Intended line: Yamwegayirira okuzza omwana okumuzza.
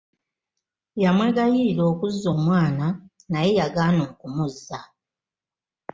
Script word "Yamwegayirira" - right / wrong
right